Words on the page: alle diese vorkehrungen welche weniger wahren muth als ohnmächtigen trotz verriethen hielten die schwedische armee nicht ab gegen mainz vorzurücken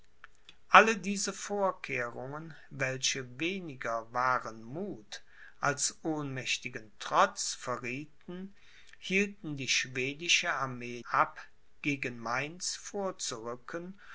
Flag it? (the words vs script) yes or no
yes